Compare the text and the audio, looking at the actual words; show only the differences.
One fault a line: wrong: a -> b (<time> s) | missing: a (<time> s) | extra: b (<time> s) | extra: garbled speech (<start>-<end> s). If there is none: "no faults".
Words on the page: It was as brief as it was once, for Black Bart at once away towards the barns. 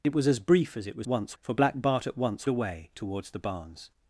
no faults